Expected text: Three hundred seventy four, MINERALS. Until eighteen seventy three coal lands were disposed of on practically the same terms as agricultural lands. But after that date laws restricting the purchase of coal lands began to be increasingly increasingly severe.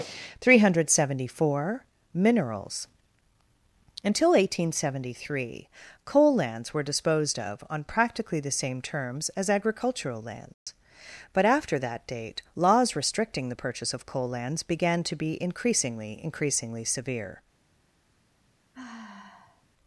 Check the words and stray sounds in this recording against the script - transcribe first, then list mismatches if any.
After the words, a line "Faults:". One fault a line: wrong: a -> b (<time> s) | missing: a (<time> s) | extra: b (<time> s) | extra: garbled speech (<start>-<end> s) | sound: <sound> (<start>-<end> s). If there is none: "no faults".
Three hundred seventy four, MINERALS. Until eighteen seventy three coal lands were disposed of on practically the same terms as agricultural lands. But after that date laws restricting the purchase of coal lands began to be increasingly increasingly severe.
Faults:
sound: dropout (10.5-10.7 s)
sound: sigh (18.7-19.7 s)